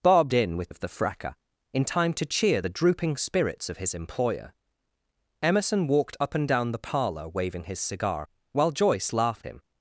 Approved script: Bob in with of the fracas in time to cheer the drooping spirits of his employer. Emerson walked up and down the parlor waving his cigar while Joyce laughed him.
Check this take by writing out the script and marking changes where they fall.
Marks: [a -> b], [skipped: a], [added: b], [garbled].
Bob in with of the fracas in time to cheer the drooping spirits of his employer. Emerson walked up and down the parlor waving his cigar while Joyce laughed him.